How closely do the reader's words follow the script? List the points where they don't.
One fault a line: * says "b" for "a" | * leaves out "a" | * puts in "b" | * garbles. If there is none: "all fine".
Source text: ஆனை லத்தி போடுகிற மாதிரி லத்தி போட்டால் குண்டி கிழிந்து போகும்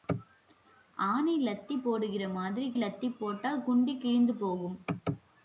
all fine